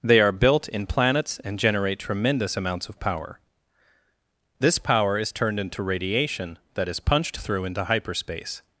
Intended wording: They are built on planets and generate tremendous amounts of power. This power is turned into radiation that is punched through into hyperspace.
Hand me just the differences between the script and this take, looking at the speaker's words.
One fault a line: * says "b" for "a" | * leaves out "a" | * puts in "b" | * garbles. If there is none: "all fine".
* says "in" for "on"